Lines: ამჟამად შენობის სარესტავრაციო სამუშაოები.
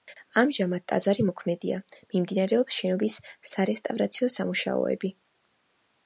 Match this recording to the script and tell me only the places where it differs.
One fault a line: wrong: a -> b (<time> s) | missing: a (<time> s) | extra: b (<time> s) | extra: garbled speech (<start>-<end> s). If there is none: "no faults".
extra: ტაძარი მოქმედია მიმდინარეობს (0.9 s)